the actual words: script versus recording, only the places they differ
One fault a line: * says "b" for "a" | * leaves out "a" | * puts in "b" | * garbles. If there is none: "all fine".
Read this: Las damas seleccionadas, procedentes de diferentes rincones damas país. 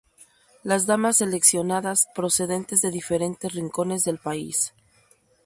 * says "del" for "damas"